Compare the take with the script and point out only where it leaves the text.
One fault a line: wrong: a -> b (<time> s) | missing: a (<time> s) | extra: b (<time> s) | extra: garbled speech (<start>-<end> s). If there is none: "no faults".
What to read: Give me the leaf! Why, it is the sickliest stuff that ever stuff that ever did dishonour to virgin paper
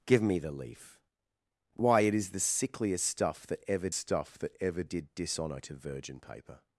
no faults